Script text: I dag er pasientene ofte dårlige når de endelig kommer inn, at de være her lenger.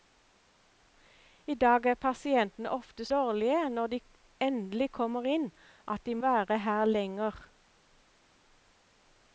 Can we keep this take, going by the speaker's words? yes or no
yes